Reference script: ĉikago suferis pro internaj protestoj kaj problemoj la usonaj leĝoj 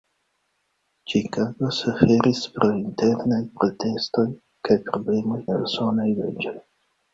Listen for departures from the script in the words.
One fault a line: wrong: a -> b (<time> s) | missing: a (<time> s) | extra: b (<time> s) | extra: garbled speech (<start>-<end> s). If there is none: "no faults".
no faults